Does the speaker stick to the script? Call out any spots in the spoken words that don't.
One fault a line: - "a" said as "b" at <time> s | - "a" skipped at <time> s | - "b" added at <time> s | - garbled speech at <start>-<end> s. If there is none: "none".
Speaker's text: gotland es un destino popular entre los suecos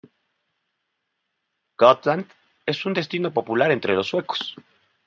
none